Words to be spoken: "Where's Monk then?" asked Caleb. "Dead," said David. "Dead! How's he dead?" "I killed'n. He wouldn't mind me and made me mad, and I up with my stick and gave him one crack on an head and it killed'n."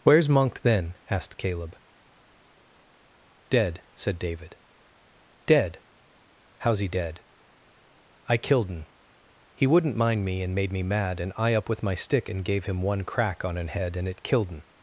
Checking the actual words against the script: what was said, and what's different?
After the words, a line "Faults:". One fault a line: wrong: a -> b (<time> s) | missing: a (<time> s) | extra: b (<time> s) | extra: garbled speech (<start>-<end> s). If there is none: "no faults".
"Where's Monk then?" asked Caleb. "Dead," said David. "Dead! How's he dead?" "I killed'n. He wouldn't mind me and made me mad, and I up with my stick and gave him one crack on an head and it killed'n."
Faults:
no faults